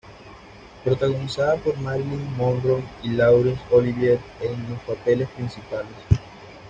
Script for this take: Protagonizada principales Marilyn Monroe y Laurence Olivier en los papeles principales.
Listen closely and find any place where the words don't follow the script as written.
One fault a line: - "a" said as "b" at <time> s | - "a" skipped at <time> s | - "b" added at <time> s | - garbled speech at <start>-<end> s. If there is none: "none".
- "principales" said as "por" at 1.6 s